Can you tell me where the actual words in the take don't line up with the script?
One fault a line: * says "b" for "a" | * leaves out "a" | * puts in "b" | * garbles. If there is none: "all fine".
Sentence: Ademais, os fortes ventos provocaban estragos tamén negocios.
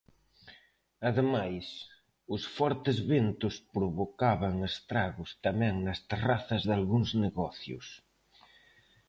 * puts in "nas terrazas dalgúns"